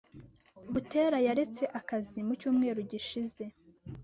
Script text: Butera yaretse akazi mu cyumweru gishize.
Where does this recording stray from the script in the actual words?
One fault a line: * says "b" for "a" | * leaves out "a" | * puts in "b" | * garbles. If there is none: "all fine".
all fine